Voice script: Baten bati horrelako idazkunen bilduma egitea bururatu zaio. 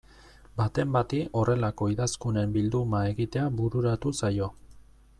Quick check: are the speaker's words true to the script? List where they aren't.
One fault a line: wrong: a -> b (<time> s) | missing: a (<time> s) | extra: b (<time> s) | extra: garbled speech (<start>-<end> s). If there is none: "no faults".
no faults